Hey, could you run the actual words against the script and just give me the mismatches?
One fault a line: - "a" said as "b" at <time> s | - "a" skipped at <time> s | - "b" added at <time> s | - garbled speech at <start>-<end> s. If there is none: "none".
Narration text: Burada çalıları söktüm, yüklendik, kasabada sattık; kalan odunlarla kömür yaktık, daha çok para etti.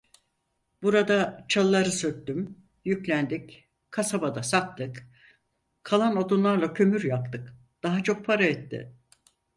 none